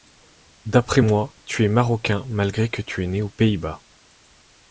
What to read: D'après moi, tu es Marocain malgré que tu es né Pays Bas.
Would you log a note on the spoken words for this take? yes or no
yes